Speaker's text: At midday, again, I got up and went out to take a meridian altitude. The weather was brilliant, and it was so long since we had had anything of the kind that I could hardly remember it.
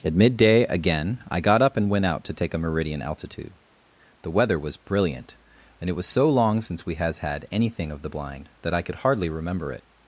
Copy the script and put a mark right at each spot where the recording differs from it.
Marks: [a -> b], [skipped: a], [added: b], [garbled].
At midday, again, I got up and went out to take a meridian altitude. The weather was brilliant, and it was so long since we [had -> has] had anything of the [kind -> blind] that I could hardly remember it.